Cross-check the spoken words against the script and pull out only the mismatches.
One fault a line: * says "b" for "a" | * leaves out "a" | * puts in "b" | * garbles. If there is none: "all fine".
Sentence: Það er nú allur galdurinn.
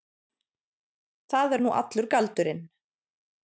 all fine